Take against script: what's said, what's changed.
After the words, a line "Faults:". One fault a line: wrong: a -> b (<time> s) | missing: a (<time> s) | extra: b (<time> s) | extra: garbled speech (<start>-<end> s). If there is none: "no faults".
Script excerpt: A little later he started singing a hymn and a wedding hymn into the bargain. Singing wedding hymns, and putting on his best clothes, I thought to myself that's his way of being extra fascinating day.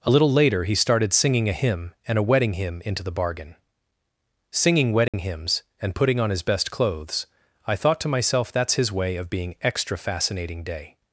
A little later he started singing a hymn and a wedding hymn into the bargain. Singing wedding hymns, and putting on his best clothes, I thought to myself that's his way of being extra fascinating day.
Faults:
no faults